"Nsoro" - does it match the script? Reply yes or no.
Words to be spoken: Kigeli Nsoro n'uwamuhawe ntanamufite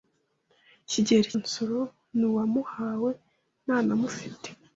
yes